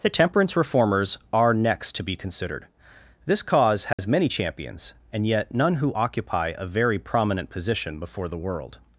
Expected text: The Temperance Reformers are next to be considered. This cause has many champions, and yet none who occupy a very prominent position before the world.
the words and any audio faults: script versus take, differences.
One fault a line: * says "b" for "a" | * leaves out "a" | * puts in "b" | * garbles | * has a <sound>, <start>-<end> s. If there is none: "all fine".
* has a dropout, 3.9-4.0 s